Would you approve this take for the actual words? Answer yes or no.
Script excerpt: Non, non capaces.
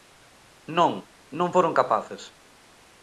no